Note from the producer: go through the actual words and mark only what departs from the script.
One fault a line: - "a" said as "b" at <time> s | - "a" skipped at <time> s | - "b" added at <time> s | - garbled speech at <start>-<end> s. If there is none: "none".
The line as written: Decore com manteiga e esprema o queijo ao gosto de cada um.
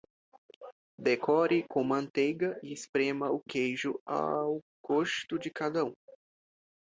none